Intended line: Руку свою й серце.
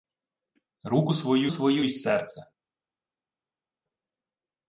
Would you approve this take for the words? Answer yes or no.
no